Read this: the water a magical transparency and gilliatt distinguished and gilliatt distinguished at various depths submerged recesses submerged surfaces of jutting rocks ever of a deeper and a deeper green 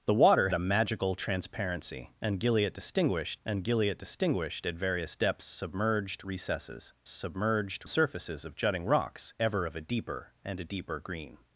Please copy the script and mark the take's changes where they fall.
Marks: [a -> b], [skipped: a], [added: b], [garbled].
the water a magical transparency and gilliatt distinguished and gilliatt distinguished at various depths submerged recesses submerged surfaces of jutting rocks ever of a deeper and a deeper green